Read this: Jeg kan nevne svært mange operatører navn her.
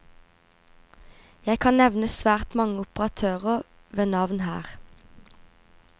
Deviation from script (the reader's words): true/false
true